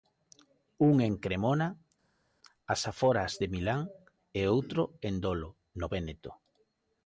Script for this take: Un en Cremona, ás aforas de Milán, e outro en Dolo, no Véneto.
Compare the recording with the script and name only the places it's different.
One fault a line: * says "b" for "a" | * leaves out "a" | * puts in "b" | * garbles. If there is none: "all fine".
all fine